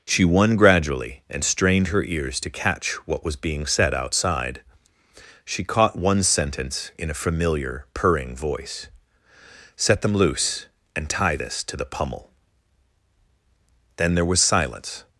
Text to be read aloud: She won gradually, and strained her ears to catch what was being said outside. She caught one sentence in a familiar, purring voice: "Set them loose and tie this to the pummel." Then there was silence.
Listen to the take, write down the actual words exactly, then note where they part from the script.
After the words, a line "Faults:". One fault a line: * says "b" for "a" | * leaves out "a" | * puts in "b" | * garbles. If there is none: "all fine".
She won gradually, and strained her ears to catch what was being said outside. She caught one sentence in a familiar, purring voice: "Set them loose and tie this to the pummel." Then there was silence.
Faults:
all fine